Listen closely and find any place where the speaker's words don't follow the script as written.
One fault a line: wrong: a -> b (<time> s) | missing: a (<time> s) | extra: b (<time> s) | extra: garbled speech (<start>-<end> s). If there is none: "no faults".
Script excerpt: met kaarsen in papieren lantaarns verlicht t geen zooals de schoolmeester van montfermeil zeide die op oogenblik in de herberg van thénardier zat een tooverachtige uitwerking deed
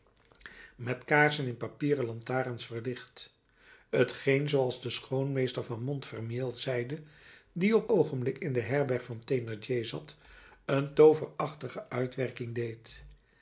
no faults